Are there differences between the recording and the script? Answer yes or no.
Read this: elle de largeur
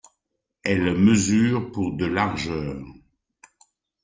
yes